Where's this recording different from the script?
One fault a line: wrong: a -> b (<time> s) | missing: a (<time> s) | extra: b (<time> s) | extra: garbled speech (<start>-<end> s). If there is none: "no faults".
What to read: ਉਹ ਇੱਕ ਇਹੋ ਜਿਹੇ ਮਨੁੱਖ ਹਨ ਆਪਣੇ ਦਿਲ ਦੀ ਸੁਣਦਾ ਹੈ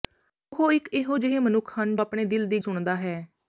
no faults